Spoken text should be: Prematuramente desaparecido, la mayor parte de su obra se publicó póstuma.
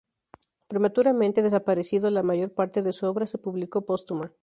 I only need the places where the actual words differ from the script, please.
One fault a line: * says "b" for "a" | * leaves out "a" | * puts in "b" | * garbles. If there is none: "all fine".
all fine